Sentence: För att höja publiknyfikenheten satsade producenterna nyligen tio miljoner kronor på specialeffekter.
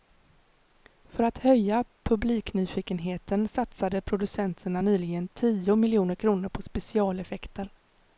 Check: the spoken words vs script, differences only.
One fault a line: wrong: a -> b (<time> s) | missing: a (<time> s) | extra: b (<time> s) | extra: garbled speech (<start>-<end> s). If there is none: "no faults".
no faults